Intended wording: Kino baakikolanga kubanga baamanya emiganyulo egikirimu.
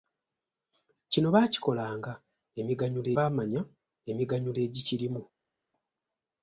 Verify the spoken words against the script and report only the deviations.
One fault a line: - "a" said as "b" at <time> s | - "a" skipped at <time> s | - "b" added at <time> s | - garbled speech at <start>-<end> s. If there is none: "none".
- "kubanga" said as "emiganyulo" at 2.6 s